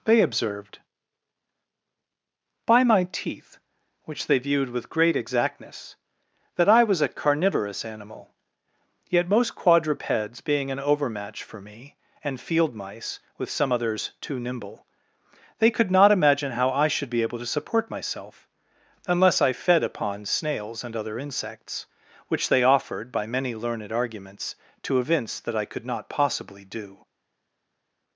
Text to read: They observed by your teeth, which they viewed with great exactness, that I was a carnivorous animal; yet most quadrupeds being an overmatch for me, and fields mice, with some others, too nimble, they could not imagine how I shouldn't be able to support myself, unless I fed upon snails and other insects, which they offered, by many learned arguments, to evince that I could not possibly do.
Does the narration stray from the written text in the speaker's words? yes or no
yes